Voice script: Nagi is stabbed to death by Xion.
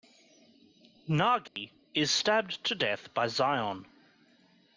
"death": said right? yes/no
yes